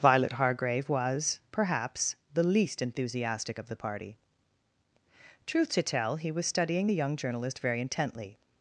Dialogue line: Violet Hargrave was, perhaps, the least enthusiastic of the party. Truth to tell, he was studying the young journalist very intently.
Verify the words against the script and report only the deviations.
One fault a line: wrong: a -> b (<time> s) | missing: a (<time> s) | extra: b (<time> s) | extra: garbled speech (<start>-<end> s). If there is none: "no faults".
no faults